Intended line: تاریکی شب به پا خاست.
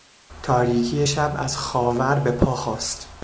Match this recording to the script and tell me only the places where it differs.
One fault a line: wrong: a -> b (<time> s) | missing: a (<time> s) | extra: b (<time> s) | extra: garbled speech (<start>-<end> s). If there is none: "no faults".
extra: از خاور (1.4 s)